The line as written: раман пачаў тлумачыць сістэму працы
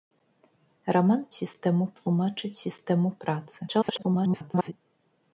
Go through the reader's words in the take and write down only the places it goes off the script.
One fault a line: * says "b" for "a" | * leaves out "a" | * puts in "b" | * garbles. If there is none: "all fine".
* says "сістэму" for "пачаў"
* garbles